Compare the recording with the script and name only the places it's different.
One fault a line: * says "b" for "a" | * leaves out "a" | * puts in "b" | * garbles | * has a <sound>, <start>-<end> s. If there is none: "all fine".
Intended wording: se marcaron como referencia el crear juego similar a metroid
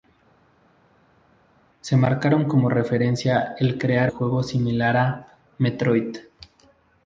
all fine